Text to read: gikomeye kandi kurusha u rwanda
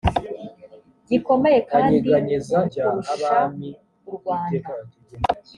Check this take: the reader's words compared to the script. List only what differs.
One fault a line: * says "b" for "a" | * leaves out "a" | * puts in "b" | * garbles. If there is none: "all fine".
all fine